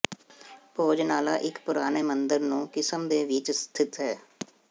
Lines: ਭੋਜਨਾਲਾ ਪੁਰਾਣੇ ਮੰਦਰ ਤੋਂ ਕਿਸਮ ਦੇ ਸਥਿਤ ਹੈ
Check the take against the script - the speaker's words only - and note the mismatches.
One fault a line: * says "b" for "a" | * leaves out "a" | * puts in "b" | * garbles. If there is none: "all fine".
* puts in "ਇੱਕ"
* says "ਨੂੰ" for "ਤੋਂ"
* puts in "ਵਿੱਚ"